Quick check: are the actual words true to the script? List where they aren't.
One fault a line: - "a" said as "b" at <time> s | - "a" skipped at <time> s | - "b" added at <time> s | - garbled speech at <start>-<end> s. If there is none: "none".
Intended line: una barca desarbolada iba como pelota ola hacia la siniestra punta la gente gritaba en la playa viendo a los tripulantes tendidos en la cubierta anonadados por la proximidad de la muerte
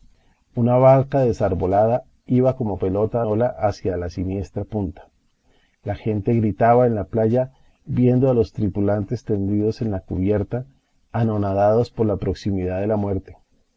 none